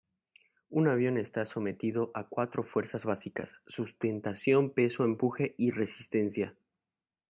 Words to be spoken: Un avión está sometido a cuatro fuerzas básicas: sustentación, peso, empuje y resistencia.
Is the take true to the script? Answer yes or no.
yes